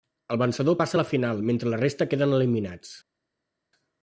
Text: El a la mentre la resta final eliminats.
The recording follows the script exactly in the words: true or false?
false